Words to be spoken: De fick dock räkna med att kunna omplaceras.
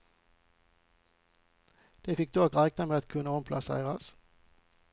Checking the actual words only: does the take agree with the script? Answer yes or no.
yes